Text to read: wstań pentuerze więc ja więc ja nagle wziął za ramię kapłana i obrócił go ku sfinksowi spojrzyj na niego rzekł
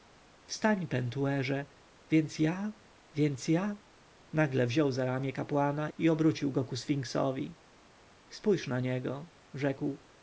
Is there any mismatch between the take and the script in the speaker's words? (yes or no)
no